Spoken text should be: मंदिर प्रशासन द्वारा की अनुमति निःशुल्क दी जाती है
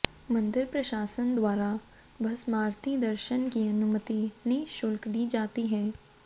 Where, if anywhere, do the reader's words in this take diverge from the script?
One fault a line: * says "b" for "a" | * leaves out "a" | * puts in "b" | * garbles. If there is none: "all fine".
* puts in "भस्मारती दर्शन"